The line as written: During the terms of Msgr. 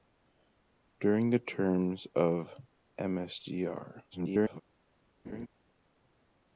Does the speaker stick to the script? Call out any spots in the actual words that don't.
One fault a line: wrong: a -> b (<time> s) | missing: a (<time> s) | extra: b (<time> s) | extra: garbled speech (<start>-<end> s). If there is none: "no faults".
extra: garbled speech (4.1-4.6 s)